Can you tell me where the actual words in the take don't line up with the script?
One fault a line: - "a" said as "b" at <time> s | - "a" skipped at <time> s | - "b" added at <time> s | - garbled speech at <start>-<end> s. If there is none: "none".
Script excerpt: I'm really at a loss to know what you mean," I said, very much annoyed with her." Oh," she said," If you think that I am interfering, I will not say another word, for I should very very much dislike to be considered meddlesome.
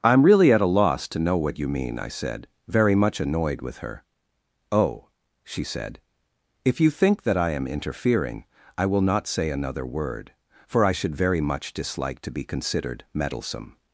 - "very" skipped at 11.4 s